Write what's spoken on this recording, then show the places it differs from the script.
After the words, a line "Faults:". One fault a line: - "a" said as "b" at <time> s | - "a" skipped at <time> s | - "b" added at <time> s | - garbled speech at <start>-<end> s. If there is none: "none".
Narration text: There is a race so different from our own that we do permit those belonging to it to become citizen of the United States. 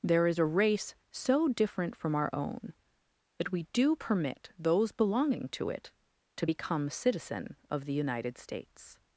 There is a race so different from our own that we do permit those belonging to it to become citizen of the United States.
Faults:
none